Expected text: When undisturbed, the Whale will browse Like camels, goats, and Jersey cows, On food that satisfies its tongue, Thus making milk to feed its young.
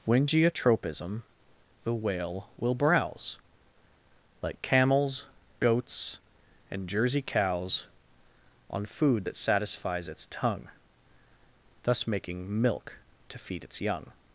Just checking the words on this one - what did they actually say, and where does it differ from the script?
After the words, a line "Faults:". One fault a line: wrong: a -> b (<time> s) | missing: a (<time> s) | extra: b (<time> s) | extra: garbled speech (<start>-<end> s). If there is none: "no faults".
When geotropism, the Whale will browse Like camels, goats, and Jersey cows, On food that satisfies its tongue, Thus making milk to feed its young.
Faults:
wrong: undisturbed -> geotropism (0.2 s)